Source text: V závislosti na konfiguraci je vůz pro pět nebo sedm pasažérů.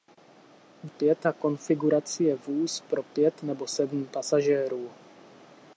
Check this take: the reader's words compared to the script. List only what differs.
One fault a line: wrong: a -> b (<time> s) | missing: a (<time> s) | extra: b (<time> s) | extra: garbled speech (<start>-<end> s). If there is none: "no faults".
wrong: závislosti -> pět (0.9 s)